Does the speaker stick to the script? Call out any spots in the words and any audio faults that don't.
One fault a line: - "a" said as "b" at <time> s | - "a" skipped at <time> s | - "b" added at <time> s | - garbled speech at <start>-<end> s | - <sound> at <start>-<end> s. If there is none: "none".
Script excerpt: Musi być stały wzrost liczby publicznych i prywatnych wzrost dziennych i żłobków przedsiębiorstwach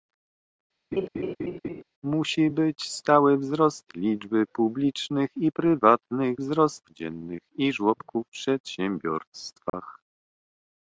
- laugh at 0.9-1.8 s
- dropout at 9.7-9.7 s